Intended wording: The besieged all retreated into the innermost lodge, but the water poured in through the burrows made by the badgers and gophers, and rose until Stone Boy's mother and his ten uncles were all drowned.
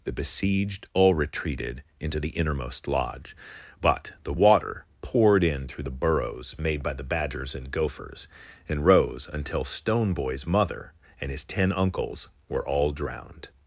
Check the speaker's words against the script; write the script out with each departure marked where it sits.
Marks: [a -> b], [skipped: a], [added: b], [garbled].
The besieged all retreated into the innermost lodge, but the water poured in through the burrows made by the badgers and gophers, and rose until Stone Boy's mother and his ten uncles were all drowned.